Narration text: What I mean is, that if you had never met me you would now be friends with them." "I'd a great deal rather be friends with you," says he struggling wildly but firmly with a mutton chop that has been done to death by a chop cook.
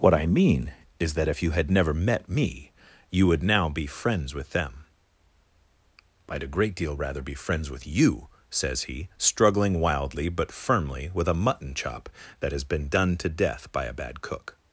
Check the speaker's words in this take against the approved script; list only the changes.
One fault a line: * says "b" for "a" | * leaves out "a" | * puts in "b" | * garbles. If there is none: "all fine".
* says "bad" for "chop"